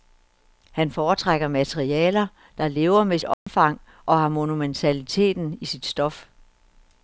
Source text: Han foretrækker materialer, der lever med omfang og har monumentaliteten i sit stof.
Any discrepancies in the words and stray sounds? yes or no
yes